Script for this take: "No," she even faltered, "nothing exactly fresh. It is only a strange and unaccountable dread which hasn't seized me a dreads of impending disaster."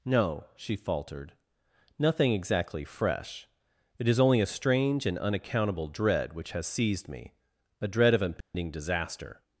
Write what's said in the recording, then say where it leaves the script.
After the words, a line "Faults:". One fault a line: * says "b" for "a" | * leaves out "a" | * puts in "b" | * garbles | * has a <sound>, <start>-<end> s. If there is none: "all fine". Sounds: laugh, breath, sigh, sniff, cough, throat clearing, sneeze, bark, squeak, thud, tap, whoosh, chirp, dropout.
"No," she faltered, "nothing exactly fresh. It is only a strange and unaccountable dread which has seized me a dread of impending disaster."
Faults:
* leaves out "even"
* says "has" for "hasn't"
* says "dread" for "dreads"
* has a dropout, 8.4-8.5 s